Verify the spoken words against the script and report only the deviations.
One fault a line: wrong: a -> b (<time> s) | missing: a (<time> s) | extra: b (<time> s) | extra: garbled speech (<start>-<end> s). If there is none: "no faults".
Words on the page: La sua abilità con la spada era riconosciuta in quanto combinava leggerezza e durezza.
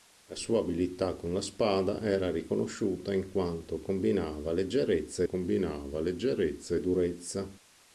extra: combinava leggerezza (5.2 s)